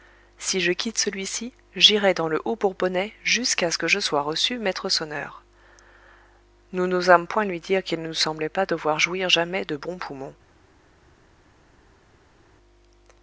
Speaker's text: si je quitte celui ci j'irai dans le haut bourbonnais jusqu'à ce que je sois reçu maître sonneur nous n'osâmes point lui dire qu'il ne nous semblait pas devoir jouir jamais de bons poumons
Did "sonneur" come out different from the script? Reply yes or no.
no